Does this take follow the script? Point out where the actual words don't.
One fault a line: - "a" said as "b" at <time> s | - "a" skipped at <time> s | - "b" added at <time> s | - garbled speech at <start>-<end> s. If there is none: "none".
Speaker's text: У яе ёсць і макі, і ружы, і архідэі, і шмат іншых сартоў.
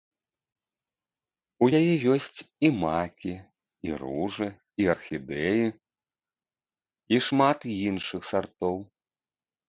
none